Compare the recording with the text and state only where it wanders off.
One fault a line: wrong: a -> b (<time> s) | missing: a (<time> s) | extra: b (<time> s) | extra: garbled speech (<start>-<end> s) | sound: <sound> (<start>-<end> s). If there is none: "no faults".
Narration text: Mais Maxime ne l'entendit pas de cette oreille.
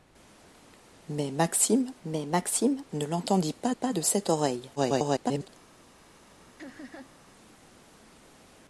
extra: mais Maxime (2.0 s)
extra: pas (3.7 s)
extra: garbled speech (4.8-5.5 s)
sound: laugh (6.6-7.2 s)